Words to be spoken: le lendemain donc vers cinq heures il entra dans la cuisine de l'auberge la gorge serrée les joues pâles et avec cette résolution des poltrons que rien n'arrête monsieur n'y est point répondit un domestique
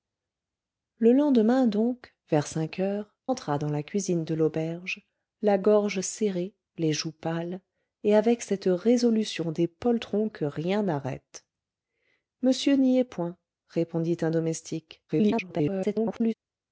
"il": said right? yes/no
no